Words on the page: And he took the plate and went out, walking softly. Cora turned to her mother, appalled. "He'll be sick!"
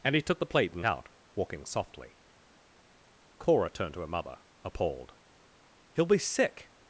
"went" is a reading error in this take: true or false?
true